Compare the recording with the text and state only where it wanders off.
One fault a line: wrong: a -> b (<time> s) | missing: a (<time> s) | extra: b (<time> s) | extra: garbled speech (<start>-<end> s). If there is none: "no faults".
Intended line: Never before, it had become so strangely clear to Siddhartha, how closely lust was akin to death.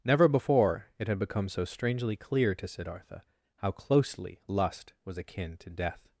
no faults